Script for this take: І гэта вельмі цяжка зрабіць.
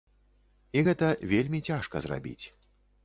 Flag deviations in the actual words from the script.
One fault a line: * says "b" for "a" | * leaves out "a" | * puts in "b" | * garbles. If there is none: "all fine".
all fine